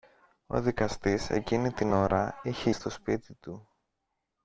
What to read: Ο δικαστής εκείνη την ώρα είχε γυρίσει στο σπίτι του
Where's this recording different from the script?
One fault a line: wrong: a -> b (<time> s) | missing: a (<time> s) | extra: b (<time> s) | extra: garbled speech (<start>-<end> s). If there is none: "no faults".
missing: γυρίσει (2.7 s)